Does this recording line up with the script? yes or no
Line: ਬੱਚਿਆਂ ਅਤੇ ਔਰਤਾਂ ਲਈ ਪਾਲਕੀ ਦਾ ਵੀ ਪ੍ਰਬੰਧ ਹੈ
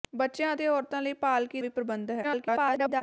no